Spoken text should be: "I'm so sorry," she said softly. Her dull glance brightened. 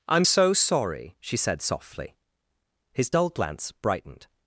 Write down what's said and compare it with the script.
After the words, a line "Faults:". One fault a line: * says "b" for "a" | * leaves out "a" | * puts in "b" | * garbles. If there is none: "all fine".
"I'm so sorry," she said softly. His dull glance brightened.
Faults:
* says "His" for "Her"